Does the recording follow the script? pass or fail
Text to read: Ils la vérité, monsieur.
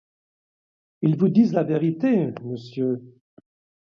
fail